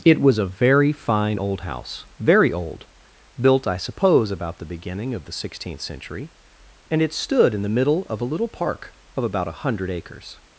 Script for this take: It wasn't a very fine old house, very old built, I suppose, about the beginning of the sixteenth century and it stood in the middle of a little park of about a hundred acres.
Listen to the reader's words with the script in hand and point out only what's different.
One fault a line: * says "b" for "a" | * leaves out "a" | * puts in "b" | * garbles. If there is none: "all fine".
* says "was" for "wasn't"